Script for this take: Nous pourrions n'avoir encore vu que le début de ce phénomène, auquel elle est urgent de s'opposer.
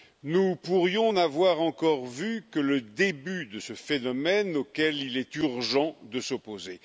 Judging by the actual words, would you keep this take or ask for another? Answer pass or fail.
fail